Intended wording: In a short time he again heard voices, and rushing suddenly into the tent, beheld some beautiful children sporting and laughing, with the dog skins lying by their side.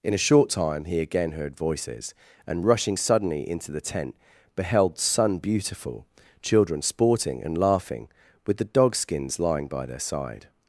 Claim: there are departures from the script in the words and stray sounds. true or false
true